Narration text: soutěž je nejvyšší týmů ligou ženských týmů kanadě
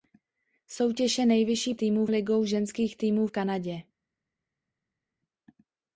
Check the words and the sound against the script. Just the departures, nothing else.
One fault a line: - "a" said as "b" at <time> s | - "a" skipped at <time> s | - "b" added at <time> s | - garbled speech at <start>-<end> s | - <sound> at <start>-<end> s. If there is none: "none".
none